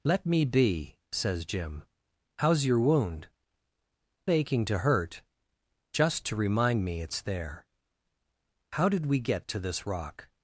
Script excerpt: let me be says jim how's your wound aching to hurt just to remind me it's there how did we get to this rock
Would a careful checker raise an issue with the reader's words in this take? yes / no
no